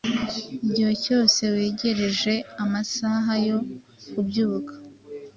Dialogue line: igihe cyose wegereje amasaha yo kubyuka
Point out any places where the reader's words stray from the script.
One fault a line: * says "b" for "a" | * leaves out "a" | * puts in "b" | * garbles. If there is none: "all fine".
all fine